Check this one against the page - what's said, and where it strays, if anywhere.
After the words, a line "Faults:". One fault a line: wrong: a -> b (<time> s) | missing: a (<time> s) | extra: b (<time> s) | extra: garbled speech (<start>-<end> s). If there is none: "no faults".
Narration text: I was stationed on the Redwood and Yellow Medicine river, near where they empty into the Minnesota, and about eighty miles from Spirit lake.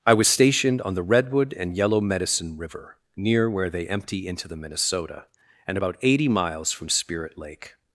I was stationed on the Redwood and Yellow Medicine river, near where they empty into the Minnesota, and about eighty miles from Spirit lake.
Faults:
no faults